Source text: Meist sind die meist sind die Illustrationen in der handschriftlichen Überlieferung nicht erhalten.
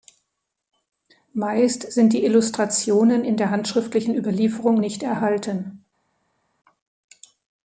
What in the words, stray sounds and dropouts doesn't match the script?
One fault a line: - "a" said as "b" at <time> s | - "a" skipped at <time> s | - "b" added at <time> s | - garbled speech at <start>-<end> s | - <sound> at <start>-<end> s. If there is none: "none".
- "meist sind die" skipped at 2.2 s